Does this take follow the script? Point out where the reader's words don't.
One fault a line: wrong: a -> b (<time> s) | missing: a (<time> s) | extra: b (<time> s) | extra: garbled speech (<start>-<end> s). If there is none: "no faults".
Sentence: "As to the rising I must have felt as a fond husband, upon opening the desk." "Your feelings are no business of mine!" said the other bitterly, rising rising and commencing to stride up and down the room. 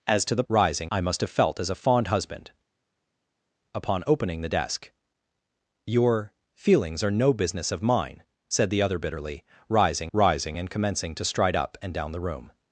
no faults